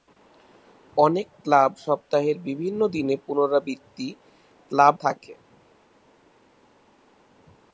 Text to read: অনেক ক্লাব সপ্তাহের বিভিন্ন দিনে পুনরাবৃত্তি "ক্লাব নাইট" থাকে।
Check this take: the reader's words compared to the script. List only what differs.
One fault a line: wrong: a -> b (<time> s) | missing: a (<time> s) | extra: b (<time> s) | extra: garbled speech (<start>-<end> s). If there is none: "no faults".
missing: নাইট (4.9 s)